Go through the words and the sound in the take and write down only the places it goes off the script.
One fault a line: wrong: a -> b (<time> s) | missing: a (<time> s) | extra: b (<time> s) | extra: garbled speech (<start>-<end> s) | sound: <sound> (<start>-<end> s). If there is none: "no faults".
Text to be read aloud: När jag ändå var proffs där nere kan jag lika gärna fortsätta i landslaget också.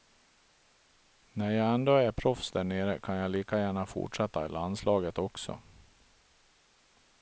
wrong: var -> är (1.9 s)